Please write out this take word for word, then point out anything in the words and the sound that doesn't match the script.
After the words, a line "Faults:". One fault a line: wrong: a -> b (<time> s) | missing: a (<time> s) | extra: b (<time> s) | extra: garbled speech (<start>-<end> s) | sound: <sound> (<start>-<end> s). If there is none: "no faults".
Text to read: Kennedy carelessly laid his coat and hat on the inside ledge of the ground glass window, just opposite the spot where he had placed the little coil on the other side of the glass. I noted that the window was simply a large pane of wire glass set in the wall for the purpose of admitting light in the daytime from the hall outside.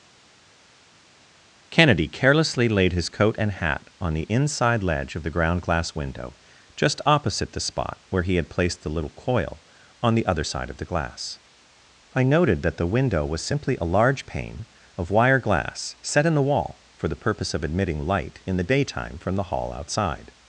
Kennedy carelessly laid his coat and hat on the inside ledge of the ground glass window, just opposite the spot where he had placed the little coil on the other side of the glass. I noted that the window was simply a large pane of wire glass set in the wall for the purpose of admitting light in the daytime from the hall outside.
Faults:
no faults